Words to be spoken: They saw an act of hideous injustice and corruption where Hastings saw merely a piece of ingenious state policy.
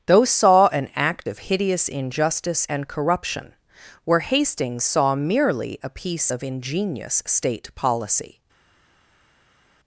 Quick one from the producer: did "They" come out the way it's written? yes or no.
no